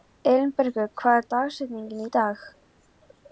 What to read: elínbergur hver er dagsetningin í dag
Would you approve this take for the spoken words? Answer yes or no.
yes